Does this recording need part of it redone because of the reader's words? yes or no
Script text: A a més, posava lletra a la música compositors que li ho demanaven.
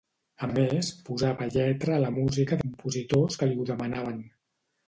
no